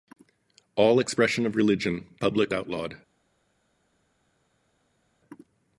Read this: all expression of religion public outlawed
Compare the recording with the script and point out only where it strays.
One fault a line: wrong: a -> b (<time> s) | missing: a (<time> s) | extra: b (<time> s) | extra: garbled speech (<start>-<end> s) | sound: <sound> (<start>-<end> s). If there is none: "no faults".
no faults